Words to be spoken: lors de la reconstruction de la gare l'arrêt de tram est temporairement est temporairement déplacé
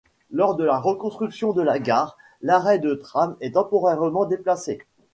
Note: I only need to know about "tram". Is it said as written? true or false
true